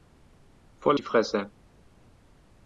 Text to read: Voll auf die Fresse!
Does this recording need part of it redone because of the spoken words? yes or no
yes